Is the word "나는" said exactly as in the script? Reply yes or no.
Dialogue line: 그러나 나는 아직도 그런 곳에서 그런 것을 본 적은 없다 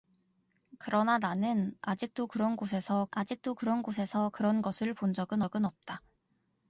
yes